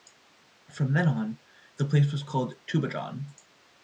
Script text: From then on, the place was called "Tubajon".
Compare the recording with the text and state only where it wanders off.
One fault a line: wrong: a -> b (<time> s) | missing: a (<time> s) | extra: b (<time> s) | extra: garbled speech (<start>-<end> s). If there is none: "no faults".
no faults